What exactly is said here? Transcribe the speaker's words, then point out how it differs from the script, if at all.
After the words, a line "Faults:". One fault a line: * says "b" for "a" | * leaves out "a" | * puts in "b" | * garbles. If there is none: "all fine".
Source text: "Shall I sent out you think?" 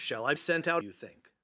"Shall I sent out you think?"
Faults:
all fine